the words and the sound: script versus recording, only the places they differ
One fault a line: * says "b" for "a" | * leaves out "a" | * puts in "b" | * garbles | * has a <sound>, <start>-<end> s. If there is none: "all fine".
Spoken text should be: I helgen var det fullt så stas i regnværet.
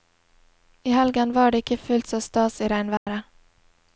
* puts in "ikke"
* has a dropout, 3.0-3.1 s